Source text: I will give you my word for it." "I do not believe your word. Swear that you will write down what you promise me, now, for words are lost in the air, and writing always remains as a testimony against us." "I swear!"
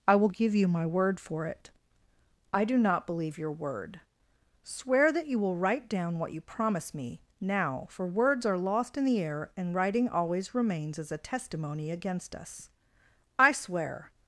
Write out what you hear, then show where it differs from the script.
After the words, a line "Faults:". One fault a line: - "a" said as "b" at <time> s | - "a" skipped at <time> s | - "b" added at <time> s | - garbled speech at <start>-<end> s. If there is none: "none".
I will give you my word for it." "I do not believe your word. Swear that you will write down what you promise me, now, for words are lost in the air, and writing always remains as a testimony against us." "I swear!"
Faults:
none